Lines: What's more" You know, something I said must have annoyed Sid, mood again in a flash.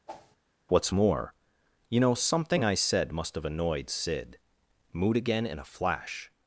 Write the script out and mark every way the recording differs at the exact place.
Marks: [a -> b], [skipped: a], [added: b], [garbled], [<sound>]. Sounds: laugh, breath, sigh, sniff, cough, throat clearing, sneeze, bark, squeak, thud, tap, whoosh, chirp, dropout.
[whoosh] What's more" You know, something I said must have annoyed Sid, mood again in a flash.